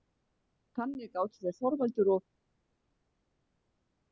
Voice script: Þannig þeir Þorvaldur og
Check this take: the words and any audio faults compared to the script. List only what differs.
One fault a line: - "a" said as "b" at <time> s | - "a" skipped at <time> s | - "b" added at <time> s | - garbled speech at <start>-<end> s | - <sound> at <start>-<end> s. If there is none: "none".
- "gátu" added at 1.2 s